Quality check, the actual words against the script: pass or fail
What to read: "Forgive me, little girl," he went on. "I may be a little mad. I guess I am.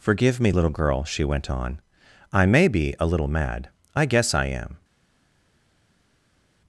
fail